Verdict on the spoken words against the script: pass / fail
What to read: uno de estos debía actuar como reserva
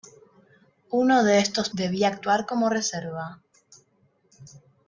pass